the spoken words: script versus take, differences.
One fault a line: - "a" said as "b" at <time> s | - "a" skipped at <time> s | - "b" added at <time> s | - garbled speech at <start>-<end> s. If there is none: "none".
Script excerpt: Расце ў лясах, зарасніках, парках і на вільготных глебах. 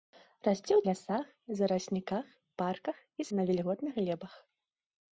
none